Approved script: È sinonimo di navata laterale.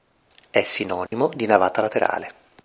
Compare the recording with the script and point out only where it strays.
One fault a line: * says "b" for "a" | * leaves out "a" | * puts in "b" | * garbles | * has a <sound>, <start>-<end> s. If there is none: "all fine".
* has a dropout, 1.1-1.1 s